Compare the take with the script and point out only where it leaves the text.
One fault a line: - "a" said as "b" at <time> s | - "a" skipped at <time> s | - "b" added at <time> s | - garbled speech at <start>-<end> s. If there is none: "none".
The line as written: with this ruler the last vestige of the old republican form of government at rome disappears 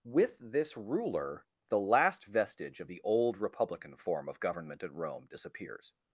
none